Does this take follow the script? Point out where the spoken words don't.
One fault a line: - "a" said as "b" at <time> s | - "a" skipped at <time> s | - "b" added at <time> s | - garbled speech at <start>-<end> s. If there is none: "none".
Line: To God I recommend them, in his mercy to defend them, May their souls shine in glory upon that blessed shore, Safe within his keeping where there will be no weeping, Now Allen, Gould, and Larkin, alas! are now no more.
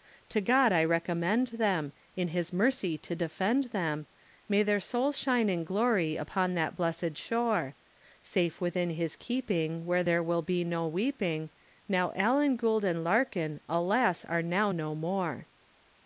none